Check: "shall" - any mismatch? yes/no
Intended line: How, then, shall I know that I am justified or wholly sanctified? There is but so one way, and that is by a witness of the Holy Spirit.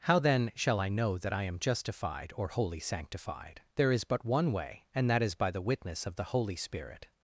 no